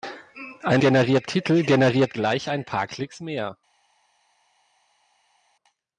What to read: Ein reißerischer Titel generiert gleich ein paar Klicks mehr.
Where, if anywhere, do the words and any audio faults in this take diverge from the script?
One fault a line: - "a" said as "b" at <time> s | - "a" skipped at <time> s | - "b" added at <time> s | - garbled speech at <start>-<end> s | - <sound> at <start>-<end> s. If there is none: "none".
- "reißerischer" said as "generiert" at 0.8 s